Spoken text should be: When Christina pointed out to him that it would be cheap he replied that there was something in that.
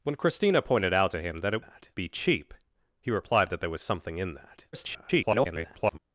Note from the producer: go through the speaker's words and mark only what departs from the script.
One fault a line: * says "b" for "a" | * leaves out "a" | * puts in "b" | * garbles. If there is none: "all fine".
* says "that" for "would"
* garbles